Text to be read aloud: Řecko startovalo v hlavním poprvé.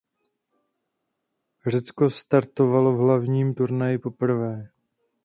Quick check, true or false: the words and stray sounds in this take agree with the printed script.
false